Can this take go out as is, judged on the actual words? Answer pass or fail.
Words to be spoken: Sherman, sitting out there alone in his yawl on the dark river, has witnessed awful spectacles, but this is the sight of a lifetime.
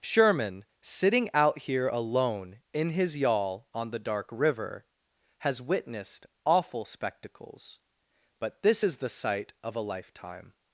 fail